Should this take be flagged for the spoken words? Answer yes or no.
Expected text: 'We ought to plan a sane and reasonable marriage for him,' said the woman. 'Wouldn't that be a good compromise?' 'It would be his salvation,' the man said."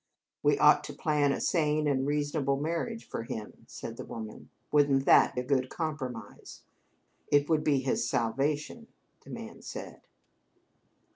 yes